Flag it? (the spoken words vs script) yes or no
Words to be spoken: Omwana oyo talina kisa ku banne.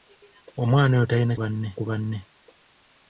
yes